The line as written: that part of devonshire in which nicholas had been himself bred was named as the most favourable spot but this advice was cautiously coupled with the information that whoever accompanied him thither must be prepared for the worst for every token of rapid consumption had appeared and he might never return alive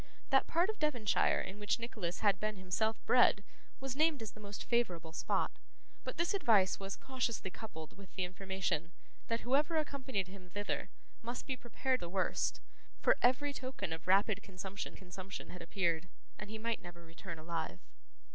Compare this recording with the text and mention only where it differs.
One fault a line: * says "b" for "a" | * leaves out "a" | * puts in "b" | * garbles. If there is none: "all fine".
* leaves out "for"
* puts in "consumption"